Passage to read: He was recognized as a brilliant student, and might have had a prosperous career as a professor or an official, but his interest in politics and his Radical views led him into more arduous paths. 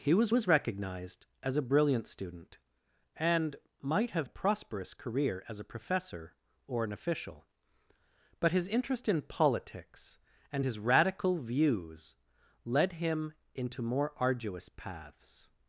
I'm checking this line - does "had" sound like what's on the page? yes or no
no